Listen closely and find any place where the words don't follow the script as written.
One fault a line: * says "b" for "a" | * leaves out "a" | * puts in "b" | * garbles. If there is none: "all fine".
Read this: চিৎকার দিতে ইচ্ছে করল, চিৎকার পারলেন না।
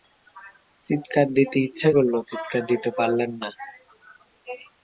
* puts in "দিতে"